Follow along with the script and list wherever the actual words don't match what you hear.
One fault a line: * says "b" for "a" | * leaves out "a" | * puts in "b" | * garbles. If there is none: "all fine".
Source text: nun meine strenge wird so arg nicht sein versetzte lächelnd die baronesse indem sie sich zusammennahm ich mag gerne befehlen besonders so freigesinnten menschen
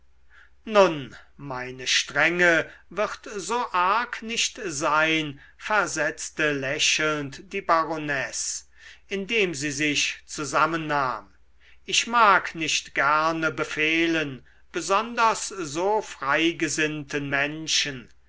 * puts in "nicht"